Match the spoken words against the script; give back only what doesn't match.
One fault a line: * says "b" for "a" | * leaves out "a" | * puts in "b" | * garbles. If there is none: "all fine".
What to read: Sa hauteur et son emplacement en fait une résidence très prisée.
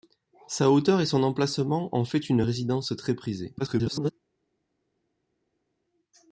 * garbles